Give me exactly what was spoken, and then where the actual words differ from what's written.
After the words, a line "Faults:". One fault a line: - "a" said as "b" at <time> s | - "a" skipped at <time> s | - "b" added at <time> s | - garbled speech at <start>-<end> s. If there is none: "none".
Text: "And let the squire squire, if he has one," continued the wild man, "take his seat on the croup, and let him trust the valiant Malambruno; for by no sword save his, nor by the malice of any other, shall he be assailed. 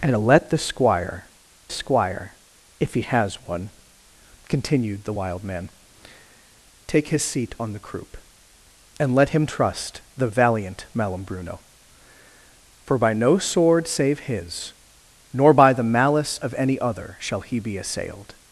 "And let the squire squire, if he has one," continued the wild man, "take his seat on the croup, and let him trust the valiant Malambruno; for by no sword save his, nor by the malice of any other, shall he be assailed.
Faults:
none